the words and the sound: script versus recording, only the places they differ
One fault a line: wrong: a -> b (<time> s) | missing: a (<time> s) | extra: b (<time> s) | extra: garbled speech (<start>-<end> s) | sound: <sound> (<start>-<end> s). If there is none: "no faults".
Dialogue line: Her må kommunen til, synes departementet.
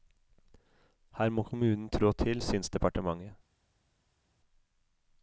extra: trå (1.9 s)